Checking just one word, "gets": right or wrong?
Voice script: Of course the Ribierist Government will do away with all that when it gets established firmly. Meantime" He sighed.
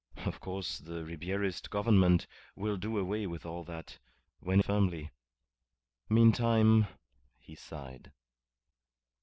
wrong